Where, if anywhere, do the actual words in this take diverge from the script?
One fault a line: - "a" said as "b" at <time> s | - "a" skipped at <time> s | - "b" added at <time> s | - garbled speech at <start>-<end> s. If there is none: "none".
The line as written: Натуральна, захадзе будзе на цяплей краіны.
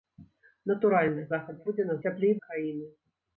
none